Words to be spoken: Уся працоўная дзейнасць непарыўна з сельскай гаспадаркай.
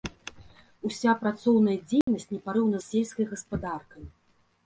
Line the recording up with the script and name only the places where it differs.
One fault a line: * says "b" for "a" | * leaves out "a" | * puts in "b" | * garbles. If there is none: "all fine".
all fine